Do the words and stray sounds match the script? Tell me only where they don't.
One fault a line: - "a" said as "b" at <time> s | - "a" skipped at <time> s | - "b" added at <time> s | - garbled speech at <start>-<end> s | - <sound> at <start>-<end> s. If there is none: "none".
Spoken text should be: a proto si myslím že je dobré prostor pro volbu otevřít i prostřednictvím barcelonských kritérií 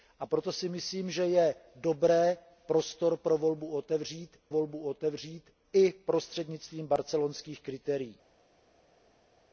- "volbu otevřít" added at 4.5 s